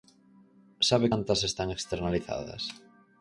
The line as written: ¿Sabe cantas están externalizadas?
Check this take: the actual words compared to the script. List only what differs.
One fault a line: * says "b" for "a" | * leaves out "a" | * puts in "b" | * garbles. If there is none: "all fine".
all fine